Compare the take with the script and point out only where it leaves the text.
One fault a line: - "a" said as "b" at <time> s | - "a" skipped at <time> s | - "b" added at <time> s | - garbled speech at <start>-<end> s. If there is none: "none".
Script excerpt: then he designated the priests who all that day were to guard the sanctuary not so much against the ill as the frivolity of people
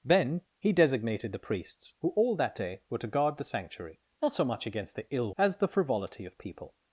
none